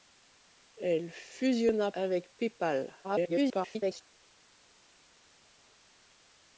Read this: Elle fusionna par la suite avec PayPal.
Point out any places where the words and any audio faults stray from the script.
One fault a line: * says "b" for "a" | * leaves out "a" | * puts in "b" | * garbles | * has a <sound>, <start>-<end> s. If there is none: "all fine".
* leaves out "par la suite"
* garbles